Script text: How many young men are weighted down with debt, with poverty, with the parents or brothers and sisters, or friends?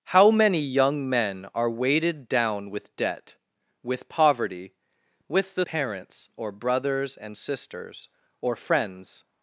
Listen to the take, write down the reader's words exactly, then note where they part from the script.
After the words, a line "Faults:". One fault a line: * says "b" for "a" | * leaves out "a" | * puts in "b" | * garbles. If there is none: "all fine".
How many young men are weighted down with debt, with poverty, with the parents or brothers and sisters, or friends?
Faults:
all fine